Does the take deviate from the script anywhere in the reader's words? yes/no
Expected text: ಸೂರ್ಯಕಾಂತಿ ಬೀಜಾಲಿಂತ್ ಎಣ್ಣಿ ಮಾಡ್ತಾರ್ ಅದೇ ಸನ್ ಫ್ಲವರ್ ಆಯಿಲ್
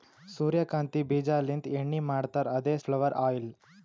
yes